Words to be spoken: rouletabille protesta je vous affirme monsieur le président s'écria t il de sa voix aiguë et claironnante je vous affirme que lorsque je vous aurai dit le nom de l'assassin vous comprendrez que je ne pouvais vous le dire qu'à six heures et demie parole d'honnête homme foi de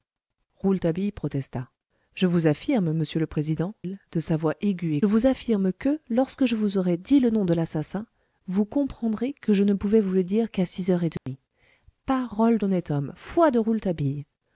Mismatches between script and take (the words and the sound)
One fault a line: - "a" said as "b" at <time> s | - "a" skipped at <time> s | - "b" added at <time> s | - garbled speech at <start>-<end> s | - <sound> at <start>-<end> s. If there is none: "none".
- "s'écria t" skipped at 3.8 s
- "claironnante je" skipped at 5.0 s
- dropout at 11.2-11.3 s